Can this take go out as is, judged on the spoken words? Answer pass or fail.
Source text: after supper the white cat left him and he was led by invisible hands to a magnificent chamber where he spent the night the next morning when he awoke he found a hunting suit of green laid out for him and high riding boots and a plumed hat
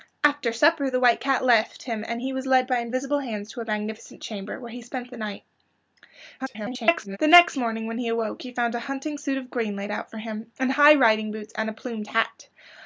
fail